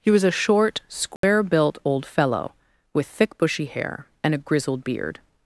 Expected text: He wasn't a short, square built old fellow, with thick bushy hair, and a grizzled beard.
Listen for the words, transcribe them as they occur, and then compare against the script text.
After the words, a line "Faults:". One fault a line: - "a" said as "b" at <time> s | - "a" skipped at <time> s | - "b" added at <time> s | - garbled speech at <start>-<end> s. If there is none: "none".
He was a short, square built old fellow, with thick bushy hair, and a grizzled beard.
Faults:
- "wasn't" said as "was" at 0.1 s